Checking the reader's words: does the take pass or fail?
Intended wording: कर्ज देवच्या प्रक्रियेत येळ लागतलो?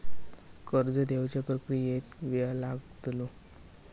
pass